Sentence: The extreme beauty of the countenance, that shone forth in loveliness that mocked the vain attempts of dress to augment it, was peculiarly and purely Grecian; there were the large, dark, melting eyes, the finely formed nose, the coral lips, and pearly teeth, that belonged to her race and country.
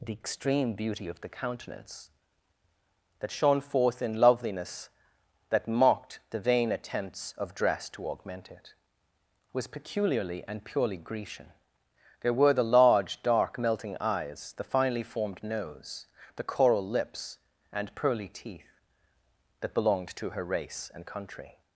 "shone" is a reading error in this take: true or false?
false